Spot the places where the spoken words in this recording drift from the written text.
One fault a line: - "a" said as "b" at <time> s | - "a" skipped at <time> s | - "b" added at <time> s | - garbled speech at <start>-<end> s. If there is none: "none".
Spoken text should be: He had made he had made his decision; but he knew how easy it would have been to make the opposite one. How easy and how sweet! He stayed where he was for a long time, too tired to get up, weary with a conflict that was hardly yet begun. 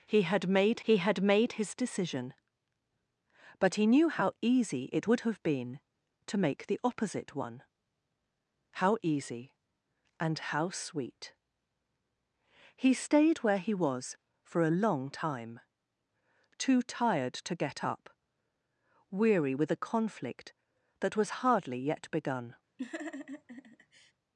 none